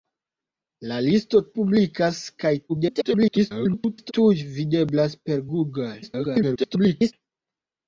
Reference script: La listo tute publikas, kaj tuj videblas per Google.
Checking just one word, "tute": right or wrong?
wrong